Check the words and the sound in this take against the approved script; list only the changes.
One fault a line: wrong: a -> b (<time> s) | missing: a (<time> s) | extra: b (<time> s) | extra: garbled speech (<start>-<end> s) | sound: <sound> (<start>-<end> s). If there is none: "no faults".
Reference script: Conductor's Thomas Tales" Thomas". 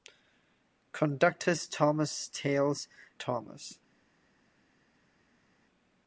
no faults